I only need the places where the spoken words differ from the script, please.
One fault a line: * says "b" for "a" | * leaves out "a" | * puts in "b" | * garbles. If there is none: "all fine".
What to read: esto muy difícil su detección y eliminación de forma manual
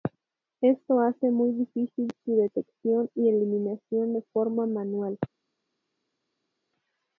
* puts in "hace"